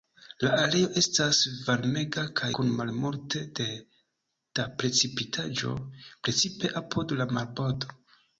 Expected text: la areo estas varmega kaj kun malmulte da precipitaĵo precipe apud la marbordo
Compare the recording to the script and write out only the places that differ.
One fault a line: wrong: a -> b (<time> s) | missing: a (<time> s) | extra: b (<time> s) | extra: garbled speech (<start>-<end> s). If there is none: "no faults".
no faults